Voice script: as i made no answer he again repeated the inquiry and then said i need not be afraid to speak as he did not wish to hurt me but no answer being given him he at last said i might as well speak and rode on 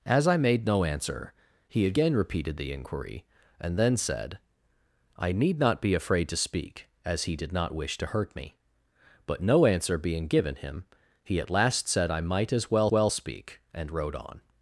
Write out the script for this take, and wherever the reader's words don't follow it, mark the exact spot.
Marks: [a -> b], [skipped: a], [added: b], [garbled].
as i made no answer he again repeated the inquiry and then said i need not be afraid to speak as he did not wish to hurt me but no answer being given him he at last said i might as well [added: well] speak and rode on